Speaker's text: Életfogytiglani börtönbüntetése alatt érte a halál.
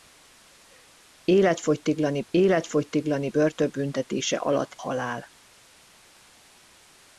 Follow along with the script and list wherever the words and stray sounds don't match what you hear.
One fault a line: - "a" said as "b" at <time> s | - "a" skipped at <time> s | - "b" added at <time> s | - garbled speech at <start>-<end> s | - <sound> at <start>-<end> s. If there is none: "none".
- "életfogytiglani" added at 2.3 s
- "érte a" skipped at 4.7 s